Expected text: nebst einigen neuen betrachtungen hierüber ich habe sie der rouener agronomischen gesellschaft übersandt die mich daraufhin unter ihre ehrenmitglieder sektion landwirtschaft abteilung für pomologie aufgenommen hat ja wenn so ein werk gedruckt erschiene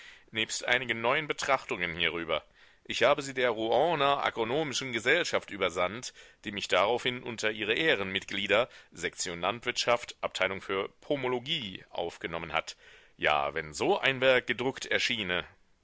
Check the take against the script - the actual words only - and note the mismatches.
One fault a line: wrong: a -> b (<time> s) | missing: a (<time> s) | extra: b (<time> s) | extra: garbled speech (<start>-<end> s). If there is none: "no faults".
no faults